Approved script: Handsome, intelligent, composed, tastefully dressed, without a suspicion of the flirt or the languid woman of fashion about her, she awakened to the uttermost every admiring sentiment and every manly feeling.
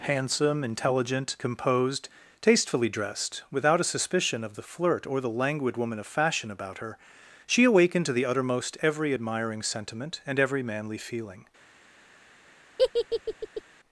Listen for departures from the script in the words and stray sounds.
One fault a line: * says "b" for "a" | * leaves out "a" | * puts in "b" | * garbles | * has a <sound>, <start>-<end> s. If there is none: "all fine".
* has a laugh, 12.8-13.6 s